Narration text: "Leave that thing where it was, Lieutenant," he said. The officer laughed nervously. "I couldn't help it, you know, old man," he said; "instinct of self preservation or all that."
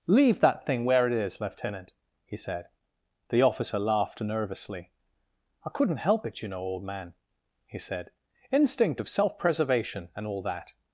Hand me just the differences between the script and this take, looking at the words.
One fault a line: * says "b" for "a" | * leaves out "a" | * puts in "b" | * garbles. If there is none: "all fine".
* says "is" for "was"
* says "and" for "or"